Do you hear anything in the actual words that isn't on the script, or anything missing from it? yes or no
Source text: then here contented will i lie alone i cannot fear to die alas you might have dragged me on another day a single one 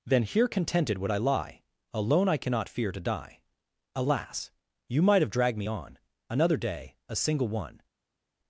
yes